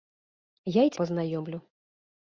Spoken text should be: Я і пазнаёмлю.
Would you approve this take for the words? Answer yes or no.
yes